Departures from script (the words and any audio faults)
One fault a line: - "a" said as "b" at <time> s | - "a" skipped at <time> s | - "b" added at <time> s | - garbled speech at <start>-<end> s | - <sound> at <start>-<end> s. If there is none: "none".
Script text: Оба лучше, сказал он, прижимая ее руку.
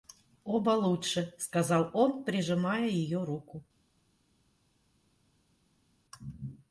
none